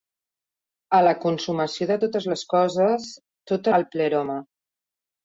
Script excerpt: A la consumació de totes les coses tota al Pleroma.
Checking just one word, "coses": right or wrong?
right